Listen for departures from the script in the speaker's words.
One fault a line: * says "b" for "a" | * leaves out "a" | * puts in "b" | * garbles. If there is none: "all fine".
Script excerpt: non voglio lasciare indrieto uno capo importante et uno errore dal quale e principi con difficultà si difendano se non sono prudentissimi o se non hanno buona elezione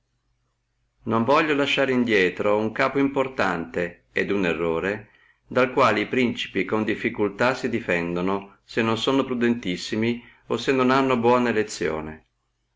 all fine